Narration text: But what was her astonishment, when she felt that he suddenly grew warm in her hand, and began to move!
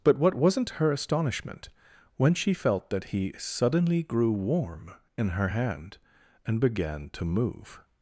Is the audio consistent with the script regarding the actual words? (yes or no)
no